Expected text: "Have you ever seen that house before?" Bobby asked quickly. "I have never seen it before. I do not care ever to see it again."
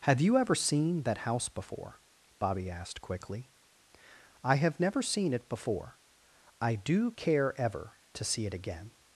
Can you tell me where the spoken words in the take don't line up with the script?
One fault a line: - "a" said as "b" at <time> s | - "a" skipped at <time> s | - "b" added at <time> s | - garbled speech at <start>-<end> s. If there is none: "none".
- "not" skipped at 7.1 s